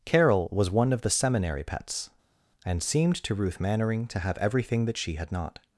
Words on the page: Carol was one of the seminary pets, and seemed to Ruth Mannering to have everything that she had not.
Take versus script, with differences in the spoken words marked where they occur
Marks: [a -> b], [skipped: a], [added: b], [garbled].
Carol was one of the seminary pets, and seemed to Ruth Mannering to have everything that she had not.